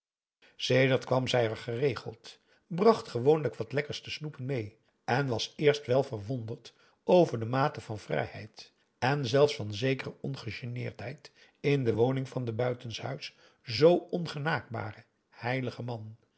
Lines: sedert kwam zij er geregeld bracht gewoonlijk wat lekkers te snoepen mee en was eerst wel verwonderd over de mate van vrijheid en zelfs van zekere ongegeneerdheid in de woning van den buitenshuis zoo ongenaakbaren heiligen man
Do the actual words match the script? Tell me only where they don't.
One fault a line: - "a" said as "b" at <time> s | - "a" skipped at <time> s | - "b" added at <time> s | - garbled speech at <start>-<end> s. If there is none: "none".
none